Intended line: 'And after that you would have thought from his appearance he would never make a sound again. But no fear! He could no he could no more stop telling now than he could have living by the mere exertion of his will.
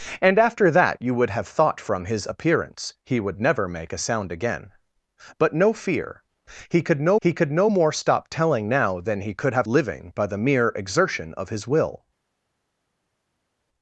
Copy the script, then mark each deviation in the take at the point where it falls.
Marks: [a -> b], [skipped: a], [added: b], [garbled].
'And after that you would have thought from his appearance he would never make a sound again. But no fear! He could no he could no more stop telling now than he could have living by the mere exertion of his will.